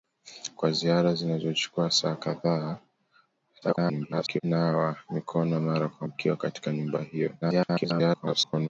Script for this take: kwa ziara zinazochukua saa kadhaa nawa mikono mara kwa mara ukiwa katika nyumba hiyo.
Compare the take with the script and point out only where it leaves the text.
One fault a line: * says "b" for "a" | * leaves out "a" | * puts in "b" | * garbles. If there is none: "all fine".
* garbles
* leaves out "mara"
* garbles